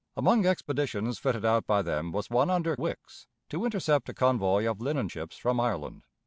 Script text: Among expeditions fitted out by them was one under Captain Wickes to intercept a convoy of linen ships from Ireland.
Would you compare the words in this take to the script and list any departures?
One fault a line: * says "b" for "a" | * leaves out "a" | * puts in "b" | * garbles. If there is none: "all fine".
* leaves out "Captain"